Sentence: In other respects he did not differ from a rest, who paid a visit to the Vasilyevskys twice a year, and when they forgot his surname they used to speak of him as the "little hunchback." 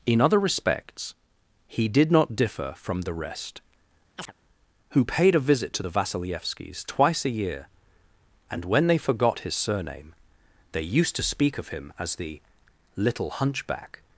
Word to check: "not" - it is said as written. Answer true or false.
true